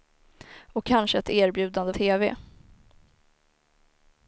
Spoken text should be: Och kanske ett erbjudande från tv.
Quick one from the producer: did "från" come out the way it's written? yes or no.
no